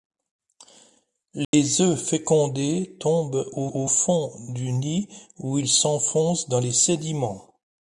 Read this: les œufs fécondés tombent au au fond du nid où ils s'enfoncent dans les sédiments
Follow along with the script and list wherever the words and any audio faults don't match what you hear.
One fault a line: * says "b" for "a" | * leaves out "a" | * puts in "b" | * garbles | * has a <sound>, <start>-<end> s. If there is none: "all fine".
* has a dropout, 1.4-1.5 s